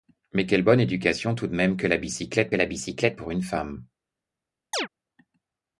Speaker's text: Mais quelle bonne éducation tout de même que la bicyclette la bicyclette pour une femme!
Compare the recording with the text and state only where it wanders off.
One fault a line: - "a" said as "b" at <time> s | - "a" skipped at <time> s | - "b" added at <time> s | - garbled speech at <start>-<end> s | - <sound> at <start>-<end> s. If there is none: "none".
- chirp at 4.7-4.9 s